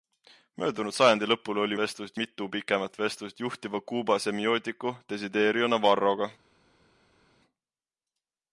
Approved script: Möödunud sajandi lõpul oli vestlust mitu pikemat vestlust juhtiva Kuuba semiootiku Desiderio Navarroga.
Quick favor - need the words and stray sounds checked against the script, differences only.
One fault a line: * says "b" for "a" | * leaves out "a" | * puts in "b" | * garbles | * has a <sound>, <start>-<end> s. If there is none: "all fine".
all fine